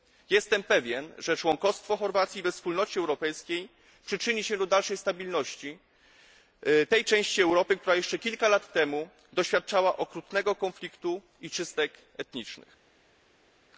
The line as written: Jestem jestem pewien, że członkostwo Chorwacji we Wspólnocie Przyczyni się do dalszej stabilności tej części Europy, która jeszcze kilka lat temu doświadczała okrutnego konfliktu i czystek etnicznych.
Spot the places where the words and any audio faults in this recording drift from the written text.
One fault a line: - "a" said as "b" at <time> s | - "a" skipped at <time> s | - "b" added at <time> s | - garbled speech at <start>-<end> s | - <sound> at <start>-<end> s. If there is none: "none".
- "jestem" skipped at 0.6 s
- "Europejskiej" added at 3.0 s